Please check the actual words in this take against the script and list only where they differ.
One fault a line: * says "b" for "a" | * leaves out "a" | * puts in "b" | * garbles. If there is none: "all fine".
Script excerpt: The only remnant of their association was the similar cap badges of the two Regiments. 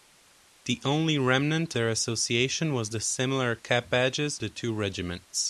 * leaves out "of"
* leaves out "of"